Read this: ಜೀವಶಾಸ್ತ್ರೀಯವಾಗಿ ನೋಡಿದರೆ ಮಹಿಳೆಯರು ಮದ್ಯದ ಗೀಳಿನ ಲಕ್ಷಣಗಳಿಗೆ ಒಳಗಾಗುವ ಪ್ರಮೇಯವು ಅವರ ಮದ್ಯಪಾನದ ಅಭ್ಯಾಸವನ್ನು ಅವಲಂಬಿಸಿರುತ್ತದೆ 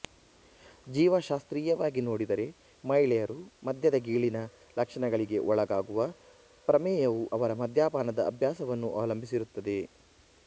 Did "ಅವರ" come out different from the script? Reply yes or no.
no